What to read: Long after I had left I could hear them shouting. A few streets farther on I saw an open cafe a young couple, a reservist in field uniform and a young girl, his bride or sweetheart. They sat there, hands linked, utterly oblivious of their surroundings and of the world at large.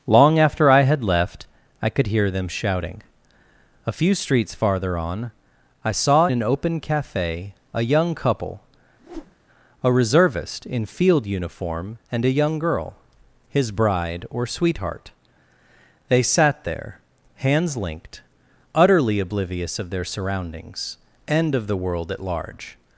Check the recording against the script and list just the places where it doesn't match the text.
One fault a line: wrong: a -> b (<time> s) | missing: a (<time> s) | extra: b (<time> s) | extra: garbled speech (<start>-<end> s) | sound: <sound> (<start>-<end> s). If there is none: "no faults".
sound: whoosh (9.0-9.4 s)